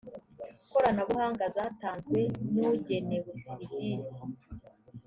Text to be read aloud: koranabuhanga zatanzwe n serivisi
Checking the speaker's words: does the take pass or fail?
fail